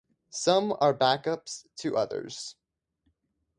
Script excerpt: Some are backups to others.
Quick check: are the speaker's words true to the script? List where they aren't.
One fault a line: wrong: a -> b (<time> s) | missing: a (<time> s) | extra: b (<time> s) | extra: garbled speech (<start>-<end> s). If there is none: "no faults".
no faults